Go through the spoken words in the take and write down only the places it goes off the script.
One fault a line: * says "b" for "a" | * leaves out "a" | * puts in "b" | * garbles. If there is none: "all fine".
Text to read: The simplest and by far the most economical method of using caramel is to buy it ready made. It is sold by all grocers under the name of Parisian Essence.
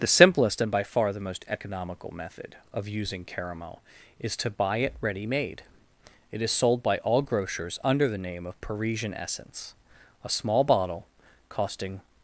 * puts in "A small bottle costing"